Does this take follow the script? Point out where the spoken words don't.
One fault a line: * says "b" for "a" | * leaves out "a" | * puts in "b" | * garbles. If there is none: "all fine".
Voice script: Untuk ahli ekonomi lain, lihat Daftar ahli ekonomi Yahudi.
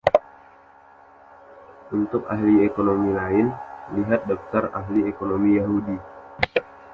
all fine